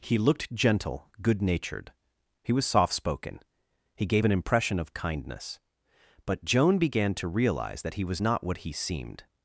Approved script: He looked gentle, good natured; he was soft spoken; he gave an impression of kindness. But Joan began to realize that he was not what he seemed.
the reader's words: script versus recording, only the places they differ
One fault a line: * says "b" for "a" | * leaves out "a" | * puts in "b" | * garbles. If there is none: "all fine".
all fine